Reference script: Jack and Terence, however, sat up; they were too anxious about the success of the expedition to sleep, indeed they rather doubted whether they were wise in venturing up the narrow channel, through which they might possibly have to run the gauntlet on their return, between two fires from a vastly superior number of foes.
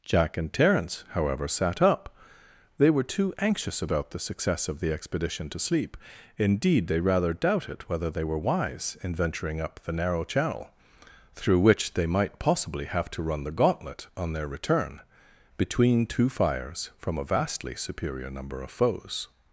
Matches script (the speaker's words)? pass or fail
pass